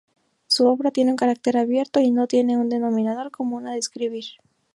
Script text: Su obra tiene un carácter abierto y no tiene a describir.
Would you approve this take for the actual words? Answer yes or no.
no